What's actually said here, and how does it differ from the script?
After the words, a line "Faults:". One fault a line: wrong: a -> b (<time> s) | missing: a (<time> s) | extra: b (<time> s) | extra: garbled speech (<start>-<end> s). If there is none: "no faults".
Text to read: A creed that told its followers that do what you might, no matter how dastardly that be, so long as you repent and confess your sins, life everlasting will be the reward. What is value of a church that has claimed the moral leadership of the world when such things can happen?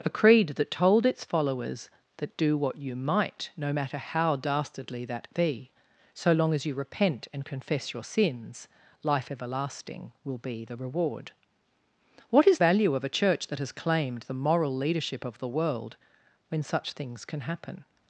A creed that told its followers that do what you might, no matter how dastardly that be, so long as you repent and confess your sins, life everlasting will be the reward. What is value of a church that has claimed the moral leadership of the world when such things can happen?
Faults:
no faults